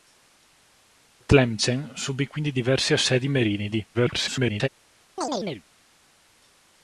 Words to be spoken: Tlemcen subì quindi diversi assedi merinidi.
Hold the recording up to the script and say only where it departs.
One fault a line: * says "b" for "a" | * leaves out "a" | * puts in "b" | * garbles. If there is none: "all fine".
* garbles